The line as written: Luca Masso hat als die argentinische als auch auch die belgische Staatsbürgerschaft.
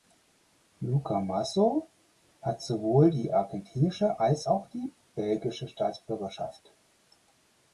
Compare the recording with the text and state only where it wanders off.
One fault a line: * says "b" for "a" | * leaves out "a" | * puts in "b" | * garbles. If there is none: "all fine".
* says "sowohl" for "als"
* leaves out "auch"